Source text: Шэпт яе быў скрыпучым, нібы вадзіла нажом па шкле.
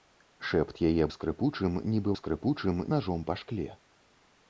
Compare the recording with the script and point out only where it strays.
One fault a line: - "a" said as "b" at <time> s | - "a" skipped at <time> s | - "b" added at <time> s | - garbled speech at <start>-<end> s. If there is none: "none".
- "быў" skipped at 1.1 s
- "вадзіла" said as "скрыпучым" at 2.2 s